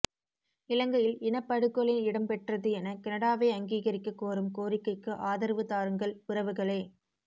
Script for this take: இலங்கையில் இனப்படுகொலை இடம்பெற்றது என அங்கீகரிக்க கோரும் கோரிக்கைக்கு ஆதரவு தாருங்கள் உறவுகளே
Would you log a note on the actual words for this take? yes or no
yes